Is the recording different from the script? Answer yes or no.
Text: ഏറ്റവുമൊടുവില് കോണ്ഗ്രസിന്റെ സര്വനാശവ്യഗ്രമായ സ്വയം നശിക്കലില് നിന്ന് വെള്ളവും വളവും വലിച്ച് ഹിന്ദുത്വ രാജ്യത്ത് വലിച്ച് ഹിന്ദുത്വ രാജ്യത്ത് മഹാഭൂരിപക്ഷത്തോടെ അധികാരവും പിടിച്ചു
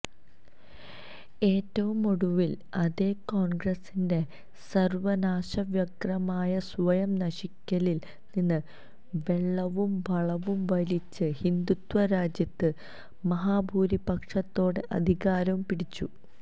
yes